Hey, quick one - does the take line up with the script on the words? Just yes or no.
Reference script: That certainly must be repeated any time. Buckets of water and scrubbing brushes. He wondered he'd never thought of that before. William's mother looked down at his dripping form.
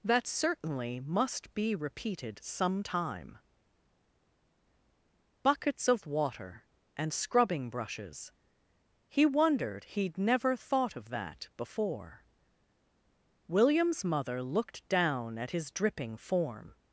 no